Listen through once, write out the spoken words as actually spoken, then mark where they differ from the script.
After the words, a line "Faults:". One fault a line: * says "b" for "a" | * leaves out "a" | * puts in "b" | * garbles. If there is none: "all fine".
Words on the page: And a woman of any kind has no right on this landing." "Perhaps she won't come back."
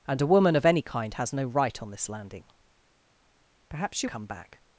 And a woman of any kind has no right on this landing." "Perhaps she come back."
Faults:
* leaves out "won't"